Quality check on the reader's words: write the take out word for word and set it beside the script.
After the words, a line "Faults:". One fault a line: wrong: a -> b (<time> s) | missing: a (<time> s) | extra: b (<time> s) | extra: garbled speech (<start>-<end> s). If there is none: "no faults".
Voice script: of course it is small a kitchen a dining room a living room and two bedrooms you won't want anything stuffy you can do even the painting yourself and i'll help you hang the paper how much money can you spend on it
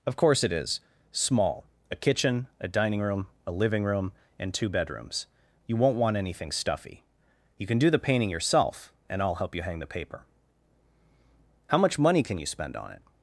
of course it is small a kitchen a dining room a living room and two bedrooms you won't want anything stuffy you can do the painting yourself and i'll help you hang the paper how much money can you spend on it
Faults:
missing: even (7.9 s)